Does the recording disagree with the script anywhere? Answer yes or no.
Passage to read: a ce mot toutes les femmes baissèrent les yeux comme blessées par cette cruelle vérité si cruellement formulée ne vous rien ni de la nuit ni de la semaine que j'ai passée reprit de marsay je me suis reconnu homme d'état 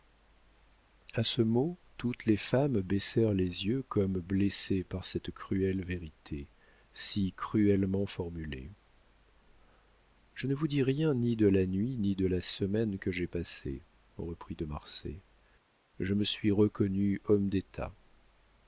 yes